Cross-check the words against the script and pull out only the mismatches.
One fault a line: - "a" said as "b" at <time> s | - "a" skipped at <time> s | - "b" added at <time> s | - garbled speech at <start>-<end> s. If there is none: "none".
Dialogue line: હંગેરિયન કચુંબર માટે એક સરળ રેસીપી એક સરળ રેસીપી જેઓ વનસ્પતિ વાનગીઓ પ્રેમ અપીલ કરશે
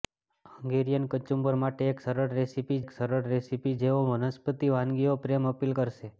none